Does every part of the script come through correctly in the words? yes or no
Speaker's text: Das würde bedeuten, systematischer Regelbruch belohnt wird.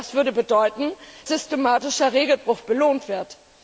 yes